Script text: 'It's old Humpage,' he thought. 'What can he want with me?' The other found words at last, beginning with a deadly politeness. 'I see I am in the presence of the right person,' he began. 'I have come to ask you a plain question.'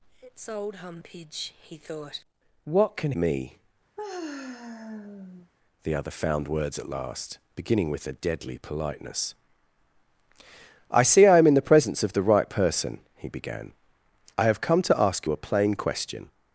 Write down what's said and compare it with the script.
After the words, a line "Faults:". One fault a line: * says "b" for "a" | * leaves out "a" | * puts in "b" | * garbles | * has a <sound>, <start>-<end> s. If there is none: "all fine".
'It's old Humpage,' he thought. 'What can me?' The other found words at last, beginning with a deadly politeness. 'I see I am in the presence of the right person,' he began. 'I have come to ask you a plain question.'
Faults:
* leaves out "he want with"
* has a sigh, 4.0-5.5 s